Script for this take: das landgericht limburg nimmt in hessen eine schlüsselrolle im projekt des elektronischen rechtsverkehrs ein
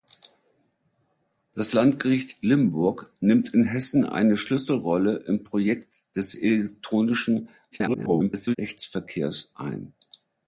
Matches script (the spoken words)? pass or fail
fail